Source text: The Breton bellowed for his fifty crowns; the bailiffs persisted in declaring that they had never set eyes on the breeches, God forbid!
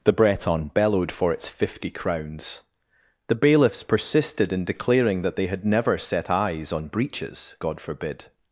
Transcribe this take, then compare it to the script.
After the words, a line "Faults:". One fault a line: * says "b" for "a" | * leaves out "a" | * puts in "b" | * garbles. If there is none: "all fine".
The Breton bellowed for its fifty crowns; the bailiffs persisted in declaring that they had never set eyes on breeches, God forbid!
Faults:
* says "its" for "his"
* leaves out "the"